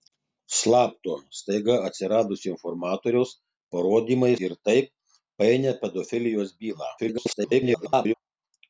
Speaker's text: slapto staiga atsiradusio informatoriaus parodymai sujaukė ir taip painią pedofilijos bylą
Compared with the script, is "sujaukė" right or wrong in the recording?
wrong